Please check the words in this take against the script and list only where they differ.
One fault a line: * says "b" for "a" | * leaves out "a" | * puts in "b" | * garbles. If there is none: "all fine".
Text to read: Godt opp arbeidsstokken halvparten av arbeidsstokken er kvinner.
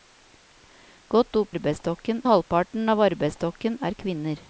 all fine